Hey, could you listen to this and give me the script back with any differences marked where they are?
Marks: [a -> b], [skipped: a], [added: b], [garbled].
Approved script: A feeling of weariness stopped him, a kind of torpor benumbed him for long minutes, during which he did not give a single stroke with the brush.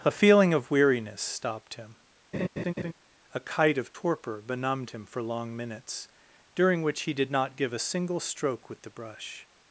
A feeling of weariness stopped him, a [kind -> kite] of torpor benumbed him for long minutes, during which he did not give a single stroke with the brush.